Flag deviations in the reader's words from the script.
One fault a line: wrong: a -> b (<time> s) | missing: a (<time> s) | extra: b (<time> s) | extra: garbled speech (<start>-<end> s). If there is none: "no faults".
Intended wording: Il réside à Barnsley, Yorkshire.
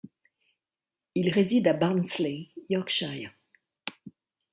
no faults